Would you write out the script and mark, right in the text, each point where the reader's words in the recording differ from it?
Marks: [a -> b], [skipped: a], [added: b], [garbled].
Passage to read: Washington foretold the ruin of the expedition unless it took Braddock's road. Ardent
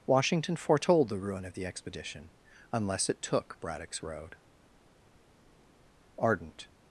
Washington foretold the ruin of the expedition unless it took Braddock's road. Ardent